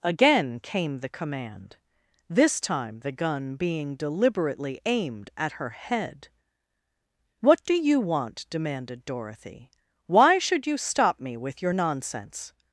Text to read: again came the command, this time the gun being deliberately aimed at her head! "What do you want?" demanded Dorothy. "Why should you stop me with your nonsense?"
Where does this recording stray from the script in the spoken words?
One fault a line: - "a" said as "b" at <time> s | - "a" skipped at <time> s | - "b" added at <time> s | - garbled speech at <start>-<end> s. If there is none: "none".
none